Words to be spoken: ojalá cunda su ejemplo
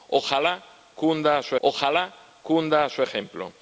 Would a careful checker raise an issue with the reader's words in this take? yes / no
yes